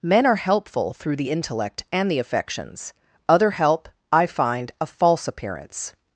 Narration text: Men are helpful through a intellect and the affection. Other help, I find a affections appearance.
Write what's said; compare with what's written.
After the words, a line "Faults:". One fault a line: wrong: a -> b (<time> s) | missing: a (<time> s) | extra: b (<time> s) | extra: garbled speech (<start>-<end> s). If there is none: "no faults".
Men are helpful through the intellect and the affections. Other help, I find a false appearance.
Faults:
wrong: a -> the (1.2 s)
wrong: affection -> affections (2.2 s)
wrong: affections -> false (4.9 s)